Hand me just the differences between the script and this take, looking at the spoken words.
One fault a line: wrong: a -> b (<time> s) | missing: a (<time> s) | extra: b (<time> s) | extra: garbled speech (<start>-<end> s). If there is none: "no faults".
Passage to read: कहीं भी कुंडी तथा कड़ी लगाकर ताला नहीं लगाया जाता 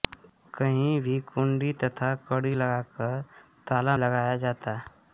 missing: नहीं (4.0 s)